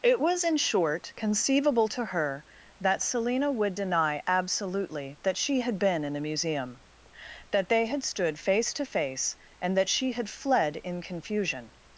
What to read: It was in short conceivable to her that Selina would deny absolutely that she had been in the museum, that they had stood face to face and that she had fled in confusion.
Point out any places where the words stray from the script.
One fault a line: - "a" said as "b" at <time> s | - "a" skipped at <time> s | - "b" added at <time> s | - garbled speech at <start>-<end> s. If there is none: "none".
none